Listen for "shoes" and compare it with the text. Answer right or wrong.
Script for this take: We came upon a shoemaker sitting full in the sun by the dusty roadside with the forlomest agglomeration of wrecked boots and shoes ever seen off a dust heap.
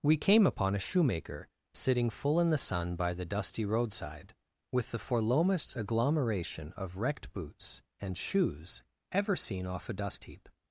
right